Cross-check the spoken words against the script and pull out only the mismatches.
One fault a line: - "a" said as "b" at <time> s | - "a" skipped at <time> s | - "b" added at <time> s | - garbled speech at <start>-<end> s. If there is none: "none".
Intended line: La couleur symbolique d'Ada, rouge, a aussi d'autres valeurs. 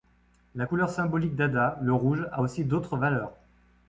- "le" added at 1.8 s